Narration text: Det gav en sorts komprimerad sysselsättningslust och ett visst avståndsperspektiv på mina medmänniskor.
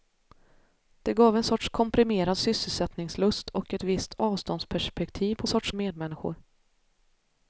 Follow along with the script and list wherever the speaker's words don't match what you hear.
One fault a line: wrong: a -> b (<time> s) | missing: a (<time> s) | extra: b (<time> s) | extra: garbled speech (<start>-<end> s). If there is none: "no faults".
wrong: mina -> sorts (5.5 s)